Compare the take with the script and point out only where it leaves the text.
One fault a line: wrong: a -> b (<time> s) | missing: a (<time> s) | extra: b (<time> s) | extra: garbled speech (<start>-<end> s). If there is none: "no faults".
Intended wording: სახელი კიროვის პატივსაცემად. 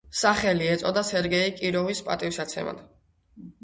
extra: ეწოდა სერგეი (0.7 s)